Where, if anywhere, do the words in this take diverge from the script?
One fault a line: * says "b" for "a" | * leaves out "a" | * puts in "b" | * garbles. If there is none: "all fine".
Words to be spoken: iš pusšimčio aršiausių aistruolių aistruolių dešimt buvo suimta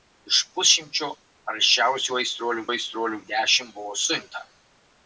all fine